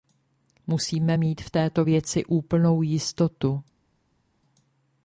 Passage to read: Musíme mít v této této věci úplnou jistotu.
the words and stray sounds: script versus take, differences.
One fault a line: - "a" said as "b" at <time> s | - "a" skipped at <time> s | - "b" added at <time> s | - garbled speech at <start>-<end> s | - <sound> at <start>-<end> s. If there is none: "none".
- "této" skipped at 1.8 s